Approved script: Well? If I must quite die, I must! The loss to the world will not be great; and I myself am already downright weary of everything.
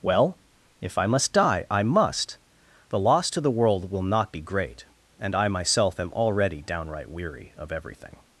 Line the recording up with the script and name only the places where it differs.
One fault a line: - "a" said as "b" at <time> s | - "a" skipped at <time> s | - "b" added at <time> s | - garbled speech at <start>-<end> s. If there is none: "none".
- "quite" skipped at 1.3 s